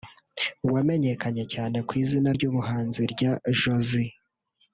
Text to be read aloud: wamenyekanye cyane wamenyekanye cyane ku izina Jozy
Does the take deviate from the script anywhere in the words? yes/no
yes